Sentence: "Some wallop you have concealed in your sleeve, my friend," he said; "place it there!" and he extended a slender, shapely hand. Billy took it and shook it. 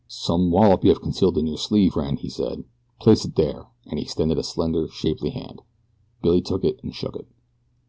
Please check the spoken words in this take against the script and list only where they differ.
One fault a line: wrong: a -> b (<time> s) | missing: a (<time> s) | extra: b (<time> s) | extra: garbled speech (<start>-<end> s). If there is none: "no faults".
missing: my (1.9 s)